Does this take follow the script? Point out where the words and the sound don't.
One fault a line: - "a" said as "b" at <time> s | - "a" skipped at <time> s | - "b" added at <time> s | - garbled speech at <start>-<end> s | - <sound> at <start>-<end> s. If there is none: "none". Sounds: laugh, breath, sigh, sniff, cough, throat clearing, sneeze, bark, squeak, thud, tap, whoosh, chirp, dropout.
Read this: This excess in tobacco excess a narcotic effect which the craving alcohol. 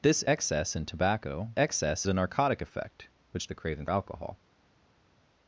none